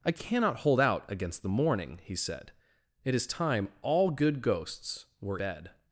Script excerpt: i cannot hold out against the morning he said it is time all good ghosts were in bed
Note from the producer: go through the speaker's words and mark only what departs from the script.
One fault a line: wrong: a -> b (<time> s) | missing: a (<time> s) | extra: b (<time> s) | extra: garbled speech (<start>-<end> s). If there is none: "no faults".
missing: in (5.4 s)